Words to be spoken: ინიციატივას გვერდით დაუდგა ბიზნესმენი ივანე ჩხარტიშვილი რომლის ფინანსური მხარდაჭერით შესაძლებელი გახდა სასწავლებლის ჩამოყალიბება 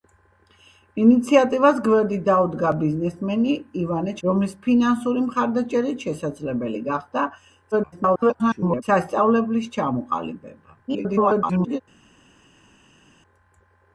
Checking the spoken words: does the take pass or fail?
fail